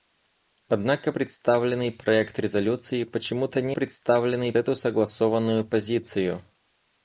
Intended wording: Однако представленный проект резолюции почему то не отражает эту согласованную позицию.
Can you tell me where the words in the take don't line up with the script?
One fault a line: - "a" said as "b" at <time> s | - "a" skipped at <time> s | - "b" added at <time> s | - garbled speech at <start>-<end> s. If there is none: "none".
- "отражает" said as "представленный" at 3.7 s